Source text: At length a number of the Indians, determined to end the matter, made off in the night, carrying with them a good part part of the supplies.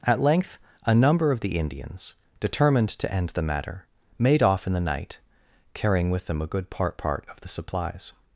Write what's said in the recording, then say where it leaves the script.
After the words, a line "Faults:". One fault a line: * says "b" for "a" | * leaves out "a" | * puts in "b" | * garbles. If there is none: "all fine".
At length a number of the Indians, determined to end the matter, made off in the night, carrying with them a good part part of the supplies.
Faults:
all fine